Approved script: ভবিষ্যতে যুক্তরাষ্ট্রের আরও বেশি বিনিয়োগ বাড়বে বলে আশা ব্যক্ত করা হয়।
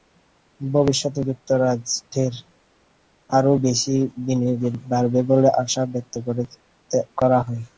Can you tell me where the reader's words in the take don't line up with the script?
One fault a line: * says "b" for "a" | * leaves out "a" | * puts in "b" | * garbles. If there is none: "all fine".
all fine